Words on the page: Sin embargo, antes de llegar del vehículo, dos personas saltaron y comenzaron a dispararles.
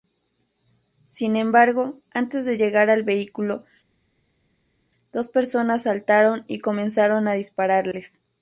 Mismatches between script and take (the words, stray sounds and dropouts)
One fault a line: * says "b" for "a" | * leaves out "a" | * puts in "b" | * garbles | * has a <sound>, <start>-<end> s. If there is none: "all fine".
* says "al" for "del"